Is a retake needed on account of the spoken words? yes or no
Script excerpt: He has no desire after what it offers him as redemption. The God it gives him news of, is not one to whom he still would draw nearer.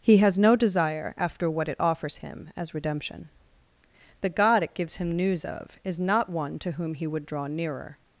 yes